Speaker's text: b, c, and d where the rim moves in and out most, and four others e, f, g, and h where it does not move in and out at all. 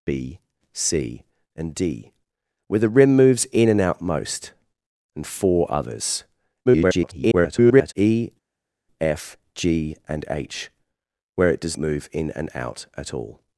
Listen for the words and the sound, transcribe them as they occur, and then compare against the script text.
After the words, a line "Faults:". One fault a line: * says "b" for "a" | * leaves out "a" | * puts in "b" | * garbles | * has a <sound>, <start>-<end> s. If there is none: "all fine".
b, c, and d where the rim moves in and out most, and four others [garbled] e, f, g, and h where it does move in and out at all.
Faults:
* garbles
* leaves out "not"